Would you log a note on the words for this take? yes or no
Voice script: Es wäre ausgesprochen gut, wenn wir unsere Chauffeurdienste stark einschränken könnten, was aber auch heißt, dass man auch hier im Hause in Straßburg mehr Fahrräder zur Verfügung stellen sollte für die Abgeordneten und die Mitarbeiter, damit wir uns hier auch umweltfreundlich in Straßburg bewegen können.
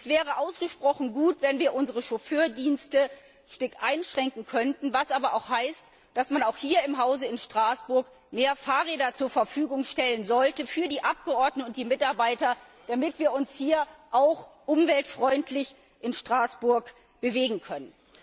no